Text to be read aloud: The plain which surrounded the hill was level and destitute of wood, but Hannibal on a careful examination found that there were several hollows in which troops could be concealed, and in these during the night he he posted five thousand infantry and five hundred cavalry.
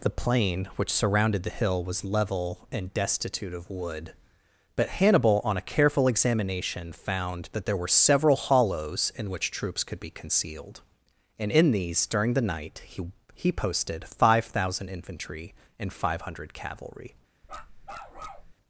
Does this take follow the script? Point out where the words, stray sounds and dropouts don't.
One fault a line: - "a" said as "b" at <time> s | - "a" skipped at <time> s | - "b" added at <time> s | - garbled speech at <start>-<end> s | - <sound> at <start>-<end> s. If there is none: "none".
- bark at 17.4-18.5 s